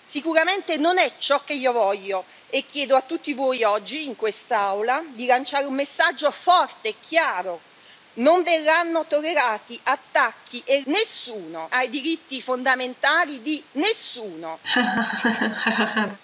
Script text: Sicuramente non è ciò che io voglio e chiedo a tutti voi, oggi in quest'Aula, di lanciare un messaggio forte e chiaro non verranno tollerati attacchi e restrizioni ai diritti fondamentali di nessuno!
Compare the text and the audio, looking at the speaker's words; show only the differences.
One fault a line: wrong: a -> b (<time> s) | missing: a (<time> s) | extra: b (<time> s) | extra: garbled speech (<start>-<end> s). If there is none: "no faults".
wrong: restrizioni -> nessuno (10.8 s)